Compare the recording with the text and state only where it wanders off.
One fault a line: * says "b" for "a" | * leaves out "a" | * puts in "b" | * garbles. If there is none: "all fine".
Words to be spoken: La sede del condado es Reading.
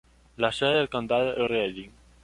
* leaves out "es"